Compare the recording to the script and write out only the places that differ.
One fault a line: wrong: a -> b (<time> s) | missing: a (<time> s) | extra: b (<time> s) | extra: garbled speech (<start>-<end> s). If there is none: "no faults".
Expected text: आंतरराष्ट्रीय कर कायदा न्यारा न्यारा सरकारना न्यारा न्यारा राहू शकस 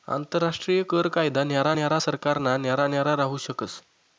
no faults